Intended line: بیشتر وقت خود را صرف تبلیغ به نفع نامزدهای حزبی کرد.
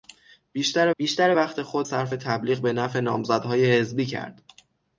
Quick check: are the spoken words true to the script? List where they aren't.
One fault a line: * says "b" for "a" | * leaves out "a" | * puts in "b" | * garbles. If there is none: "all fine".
* puts in "بیشتر"
* leaves out "را"